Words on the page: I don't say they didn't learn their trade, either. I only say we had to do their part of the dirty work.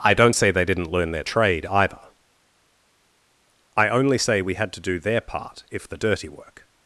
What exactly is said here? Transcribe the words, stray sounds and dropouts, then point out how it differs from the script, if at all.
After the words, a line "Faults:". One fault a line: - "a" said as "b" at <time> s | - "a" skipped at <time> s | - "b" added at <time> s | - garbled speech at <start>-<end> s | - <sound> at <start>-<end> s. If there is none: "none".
I don't say they didn't learn their trade, either. I only say we had to do their part if the dirty work.
Faults:
- "of" said as "if" at 5.7 s